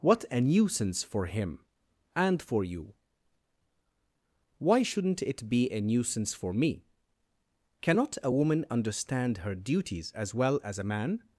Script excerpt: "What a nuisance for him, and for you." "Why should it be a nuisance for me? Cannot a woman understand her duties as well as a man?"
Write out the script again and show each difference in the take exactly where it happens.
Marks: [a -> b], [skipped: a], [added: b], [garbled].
"What a nuisance for him, and for you." "Why [should -> shouldn't] it be a nuisance for me? Cannot a woman understand her duties as well as a man?"